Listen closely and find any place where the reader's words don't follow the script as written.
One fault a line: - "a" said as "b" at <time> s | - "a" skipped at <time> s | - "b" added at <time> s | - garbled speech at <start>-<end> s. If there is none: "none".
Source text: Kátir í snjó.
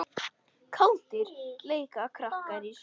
- "leika krakkar" added at 1.7 s